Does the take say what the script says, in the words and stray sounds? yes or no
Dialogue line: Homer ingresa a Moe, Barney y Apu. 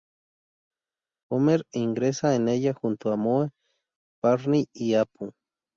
no